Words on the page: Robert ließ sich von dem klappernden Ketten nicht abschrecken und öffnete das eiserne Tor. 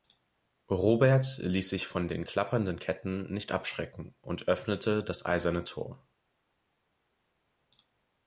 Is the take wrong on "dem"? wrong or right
wrong